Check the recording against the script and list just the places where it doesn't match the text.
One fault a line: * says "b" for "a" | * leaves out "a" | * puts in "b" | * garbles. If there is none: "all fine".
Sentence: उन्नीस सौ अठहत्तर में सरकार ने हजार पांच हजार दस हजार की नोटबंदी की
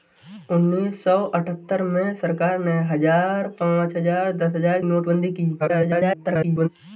* leaves out "की"
* garbles